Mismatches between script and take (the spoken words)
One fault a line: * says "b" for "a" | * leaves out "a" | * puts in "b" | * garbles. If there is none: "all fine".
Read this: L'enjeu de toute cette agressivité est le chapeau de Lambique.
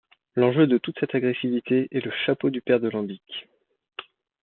* puts in "du père"